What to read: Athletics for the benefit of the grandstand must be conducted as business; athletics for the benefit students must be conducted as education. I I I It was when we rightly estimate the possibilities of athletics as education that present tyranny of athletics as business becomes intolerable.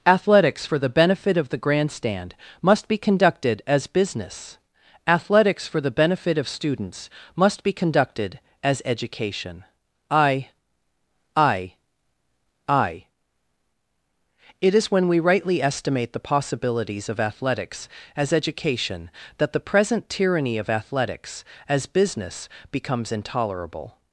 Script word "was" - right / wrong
wrong